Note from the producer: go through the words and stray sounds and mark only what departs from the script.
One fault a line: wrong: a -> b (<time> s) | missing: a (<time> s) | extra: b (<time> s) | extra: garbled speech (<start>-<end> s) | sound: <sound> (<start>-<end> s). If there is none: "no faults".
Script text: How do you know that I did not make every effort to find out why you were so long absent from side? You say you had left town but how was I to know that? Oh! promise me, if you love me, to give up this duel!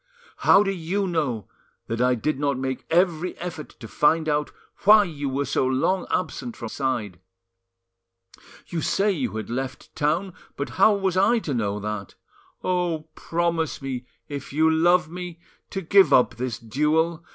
no faults